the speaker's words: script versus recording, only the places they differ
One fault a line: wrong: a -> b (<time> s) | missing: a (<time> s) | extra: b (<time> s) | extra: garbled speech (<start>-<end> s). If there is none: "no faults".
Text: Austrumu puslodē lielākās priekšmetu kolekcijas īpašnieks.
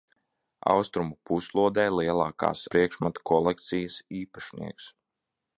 no faults